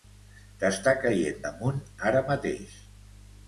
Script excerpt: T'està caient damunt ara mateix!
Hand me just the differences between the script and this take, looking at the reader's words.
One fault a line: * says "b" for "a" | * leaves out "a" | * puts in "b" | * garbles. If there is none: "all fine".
all fine